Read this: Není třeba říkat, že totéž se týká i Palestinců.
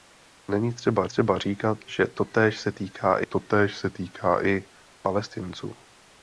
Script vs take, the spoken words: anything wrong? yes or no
yes